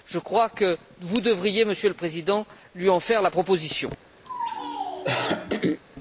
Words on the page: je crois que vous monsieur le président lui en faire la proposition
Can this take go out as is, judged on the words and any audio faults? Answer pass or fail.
fail